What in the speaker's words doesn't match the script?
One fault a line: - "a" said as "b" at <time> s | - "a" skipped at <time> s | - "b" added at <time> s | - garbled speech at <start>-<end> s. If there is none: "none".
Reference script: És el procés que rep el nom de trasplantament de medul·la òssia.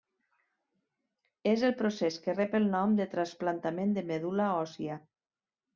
none